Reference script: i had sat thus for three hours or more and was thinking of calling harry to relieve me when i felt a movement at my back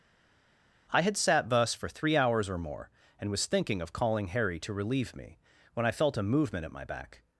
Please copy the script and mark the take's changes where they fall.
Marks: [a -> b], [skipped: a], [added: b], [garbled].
i had sat thus for three hours or more and was thinking of calling harry to relieve me when i felt a movement at my back